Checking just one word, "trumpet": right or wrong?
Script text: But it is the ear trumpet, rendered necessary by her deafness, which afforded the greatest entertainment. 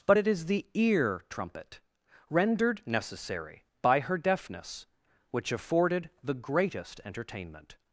right